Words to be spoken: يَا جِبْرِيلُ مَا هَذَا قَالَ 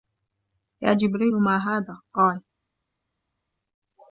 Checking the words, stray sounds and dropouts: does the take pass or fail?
pass